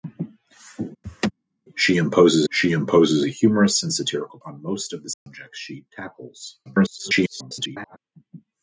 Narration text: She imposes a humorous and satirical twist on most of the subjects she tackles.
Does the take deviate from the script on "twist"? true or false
true